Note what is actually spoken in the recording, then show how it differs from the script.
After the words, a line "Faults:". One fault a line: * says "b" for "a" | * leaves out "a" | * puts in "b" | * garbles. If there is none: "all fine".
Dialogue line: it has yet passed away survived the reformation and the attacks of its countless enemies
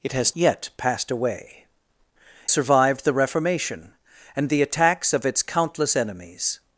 it has yet passed away survived the reformation and the attacks of its countless enemies
Faults:
all fine